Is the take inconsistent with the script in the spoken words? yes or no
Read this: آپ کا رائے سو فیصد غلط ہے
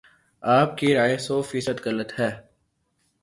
yes